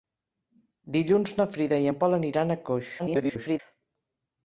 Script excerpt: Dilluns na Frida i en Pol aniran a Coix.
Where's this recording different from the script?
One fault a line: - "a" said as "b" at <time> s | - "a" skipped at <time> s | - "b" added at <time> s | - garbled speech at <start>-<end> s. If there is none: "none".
- garbled speech at 3.0-3.6 s